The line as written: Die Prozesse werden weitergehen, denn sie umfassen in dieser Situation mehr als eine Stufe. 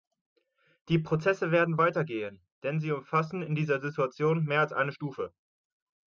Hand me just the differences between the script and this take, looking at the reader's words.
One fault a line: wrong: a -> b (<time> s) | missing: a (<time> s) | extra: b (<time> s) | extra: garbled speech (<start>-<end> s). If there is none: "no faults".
no faults